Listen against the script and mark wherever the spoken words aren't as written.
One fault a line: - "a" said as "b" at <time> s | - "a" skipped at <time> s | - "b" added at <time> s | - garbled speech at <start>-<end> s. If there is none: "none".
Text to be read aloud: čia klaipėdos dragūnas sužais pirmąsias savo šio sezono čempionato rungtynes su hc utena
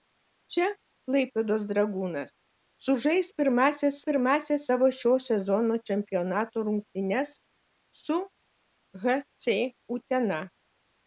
- "pirmąsias" added at 4.1 s